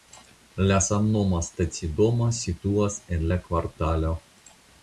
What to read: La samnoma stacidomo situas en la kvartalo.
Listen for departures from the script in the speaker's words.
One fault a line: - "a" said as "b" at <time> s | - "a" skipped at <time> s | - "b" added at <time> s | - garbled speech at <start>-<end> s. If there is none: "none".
none